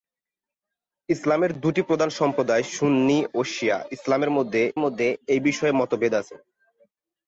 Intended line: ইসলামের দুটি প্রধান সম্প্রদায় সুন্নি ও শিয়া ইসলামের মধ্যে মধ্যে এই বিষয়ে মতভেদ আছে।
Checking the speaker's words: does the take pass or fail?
pass